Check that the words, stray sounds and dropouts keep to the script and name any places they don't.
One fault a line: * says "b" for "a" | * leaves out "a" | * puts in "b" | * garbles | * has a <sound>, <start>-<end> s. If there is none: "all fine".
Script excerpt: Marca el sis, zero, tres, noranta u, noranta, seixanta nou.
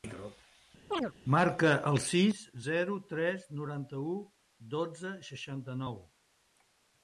* has a chirp, 0.9-1.1 s
* says "dotze" for "noranta"